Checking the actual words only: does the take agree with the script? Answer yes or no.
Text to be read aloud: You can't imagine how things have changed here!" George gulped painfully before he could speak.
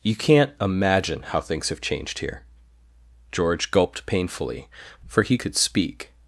no